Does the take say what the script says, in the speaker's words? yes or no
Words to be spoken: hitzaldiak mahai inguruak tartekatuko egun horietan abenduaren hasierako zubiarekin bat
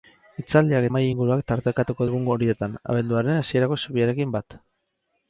yes